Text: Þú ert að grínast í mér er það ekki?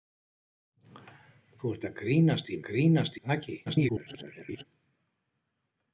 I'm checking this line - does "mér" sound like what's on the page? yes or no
no